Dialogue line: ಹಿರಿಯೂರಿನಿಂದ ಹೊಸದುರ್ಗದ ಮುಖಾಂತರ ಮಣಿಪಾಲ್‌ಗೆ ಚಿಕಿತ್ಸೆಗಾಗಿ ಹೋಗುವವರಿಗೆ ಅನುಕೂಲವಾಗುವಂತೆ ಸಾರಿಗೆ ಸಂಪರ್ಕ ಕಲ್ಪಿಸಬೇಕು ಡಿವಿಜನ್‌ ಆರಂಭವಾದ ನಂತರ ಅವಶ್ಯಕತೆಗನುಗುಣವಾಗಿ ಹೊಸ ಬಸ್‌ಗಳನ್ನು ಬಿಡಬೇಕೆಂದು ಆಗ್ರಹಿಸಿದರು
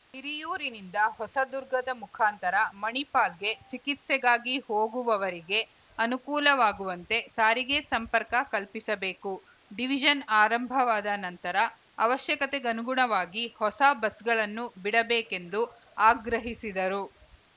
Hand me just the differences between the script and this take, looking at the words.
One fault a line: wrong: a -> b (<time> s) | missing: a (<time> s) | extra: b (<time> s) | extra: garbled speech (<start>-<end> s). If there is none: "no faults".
no faults